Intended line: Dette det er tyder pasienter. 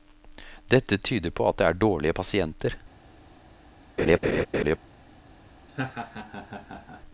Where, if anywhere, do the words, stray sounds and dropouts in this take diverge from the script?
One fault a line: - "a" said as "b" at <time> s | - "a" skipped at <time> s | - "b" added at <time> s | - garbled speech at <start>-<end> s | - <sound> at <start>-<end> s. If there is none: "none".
- "tyder på at" added at 1.0 s
- "tyder" said as "dårlige" at 1.8 s
- laugh at 4.0-4.8 s
- laugh at 5.7-7.0 s